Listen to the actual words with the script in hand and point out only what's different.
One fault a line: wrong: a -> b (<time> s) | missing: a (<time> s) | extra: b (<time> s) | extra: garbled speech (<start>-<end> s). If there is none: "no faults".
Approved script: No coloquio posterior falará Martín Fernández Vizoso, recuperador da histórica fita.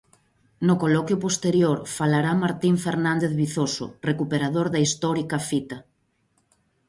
no faults